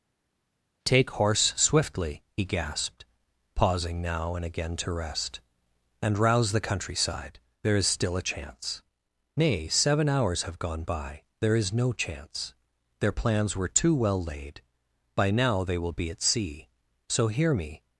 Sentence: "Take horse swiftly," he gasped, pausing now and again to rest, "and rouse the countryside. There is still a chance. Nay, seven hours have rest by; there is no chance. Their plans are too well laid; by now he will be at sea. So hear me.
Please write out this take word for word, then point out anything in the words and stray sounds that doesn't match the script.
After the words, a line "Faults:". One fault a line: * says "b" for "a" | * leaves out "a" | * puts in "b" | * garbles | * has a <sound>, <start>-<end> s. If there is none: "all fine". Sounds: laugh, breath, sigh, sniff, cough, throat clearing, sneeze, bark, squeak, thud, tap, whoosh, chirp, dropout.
"Take horse swiftly," he gasped, pausing now and again to rest, "and rouse the countryside. There is still a chance. Nay, seven hours have gone by; there is no chance. Their plans were too well laid; by now they will be at sea. So hear me.
Faults:
* says "gone" for "rest"
* says "were" for "are"
* says "they" for "he"